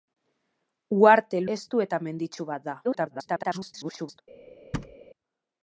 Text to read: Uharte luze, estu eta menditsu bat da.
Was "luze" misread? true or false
true